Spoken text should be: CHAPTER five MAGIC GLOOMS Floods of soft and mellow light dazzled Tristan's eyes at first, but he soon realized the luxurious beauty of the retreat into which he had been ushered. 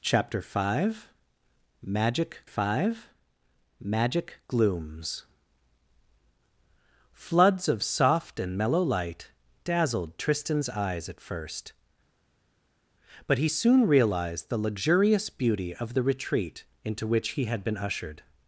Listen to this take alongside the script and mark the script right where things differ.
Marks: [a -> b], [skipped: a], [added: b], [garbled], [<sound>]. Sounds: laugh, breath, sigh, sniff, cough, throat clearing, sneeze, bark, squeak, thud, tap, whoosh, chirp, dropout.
CHAPTER five MAGIC [added: five MAGIC] GLOOMS Floods of soft and mellow light dazzled Tristan's eyes at first, but he soon realized the luxurious beauty of the retreat into which he had been ushered.